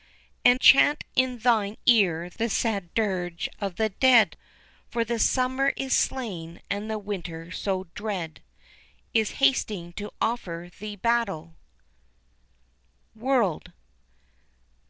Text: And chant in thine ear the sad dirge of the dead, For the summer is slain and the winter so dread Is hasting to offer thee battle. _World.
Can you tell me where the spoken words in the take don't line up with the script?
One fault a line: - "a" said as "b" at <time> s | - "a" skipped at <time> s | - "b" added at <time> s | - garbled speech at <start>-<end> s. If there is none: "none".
none